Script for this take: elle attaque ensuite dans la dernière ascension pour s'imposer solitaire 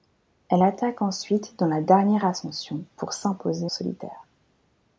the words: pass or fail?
pass